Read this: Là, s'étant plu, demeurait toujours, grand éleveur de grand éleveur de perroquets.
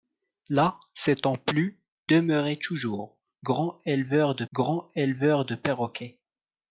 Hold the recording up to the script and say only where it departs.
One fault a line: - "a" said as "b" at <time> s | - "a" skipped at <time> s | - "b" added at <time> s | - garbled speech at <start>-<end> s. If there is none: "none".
none